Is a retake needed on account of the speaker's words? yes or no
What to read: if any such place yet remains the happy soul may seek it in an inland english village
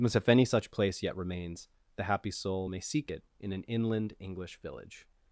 yes